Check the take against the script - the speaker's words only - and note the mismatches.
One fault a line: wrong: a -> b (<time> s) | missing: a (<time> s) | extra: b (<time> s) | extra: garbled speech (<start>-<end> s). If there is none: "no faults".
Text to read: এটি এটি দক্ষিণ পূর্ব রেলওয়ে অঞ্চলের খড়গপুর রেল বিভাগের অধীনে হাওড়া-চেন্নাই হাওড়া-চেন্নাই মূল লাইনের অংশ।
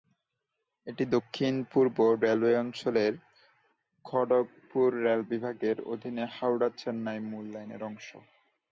missing: এটি (1.0 s)
missing: হাওড়া-চেন্নাই (7.2 s)